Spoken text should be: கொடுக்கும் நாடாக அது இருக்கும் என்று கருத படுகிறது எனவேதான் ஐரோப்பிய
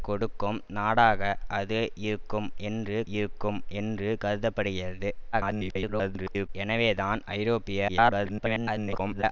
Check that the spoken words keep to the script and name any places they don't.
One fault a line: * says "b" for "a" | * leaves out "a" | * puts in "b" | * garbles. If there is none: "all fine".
* puts in "இருக்கும் என்று"
* garbles
* garbles